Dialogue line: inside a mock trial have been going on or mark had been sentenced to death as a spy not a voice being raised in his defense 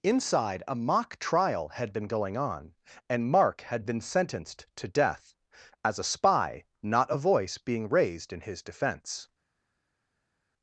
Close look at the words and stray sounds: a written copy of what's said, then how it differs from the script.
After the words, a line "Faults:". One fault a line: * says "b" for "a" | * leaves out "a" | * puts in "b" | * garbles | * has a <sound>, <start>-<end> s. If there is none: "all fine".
inside a mock trial had been going on and mark had been sentenced to death as a spy not a voice being raised in his defense
Faults:
* says "had" for "have"
* says "and" for "or"